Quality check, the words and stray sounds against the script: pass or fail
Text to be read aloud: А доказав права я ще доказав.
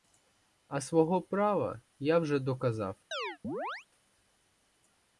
fail